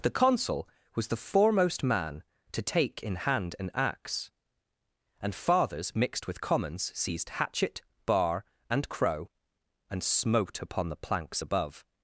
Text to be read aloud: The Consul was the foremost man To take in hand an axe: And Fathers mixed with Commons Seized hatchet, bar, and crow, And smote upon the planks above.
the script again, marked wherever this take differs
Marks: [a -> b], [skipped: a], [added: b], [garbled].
The Consul was the foremost man To take in hand an axe: And Fathers mixed with Commons Seized hatchet, bar, and crow, And smote upon the planks above.